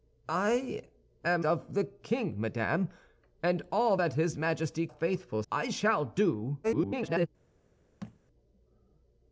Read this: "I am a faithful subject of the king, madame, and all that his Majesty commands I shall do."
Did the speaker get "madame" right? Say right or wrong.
right